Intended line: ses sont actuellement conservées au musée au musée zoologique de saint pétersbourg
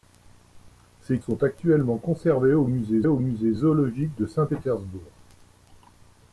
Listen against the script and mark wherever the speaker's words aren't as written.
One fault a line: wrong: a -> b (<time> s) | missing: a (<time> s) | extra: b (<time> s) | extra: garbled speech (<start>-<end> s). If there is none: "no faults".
no faults